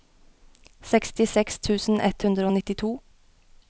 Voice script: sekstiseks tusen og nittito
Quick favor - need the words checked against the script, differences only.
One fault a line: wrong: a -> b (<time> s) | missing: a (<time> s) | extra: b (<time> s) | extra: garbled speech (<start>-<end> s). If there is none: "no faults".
extra: ett hundre (2.1 s)